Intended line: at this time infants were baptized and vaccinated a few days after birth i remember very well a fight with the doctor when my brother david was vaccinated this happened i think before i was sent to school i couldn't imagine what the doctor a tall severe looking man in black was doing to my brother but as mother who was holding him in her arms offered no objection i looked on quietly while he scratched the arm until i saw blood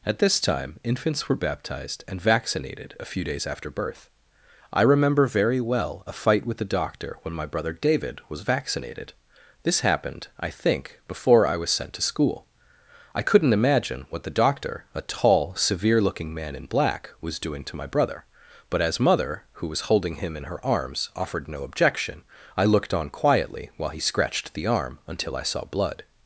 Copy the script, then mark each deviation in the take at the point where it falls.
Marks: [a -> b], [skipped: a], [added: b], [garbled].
at this time infants were baptized and vaccinated a few days after birth i remember very well a fight with the doctor when my brother david was vaccinated this happened i think before i was sent to school i couldn't imagine what the doctor a tall severe looking man in black was doing to my brother but as mother who was holding him in her arms offered no objection i looked on quietly while he scratched the arm until i saw blood